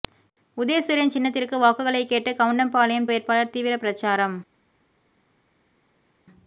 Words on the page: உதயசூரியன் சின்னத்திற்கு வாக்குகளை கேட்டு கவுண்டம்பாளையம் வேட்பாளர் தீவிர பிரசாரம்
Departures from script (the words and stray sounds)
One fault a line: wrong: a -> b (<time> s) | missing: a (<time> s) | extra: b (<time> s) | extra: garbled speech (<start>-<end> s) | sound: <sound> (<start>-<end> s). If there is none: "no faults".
no faults